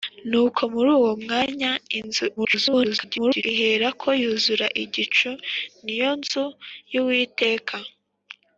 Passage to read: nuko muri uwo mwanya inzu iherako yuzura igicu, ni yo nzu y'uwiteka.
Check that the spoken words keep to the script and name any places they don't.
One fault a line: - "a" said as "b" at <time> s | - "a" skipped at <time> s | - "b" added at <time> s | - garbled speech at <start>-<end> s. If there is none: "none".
- garbled speech at 2.4-3.4 s